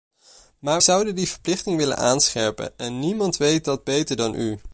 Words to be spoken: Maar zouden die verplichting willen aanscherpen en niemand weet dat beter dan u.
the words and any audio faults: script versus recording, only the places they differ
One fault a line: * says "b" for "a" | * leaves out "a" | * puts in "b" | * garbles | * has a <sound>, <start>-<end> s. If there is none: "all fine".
all fine